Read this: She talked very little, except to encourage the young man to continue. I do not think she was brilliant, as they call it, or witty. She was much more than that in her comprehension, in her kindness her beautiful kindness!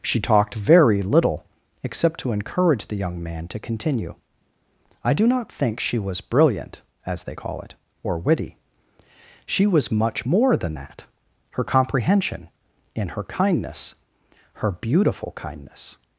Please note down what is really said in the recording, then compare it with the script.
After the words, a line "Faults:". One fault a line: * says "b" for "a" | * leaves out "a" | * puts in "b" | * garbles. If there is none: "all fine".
She talked very little, except to encourage the young man to continue. I do not think she was brilliant, as they call it, or witty. She was much more than that her comprehension, in her kindness her beautiful kindness!
Faults:
* leaves out "in"